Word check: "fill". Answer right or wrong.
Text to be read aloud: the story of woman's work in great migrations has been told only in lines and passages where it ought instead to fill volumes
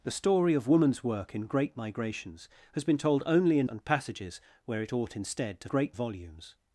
wrong